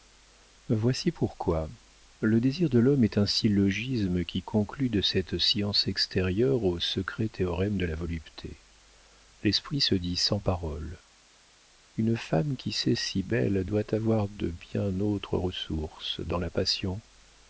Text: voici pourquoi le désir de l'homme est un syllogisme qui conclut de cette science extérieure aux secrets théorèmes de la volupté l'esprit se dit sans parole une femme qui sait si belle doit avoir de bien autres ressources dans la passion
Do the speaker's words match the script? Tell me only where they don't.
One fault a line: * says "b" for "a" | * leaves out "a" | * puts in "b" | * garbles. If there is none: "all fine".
all fine